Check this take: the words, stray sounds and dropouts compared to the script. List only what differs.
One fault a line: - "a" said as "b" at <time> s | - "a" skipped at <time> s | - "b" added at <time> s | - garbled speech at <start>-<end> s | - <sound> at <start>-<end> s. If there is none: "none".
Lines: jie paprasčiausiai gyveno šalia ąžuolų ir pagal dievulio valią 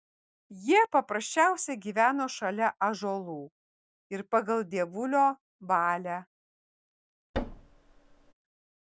- thud at 7.3-8.3 s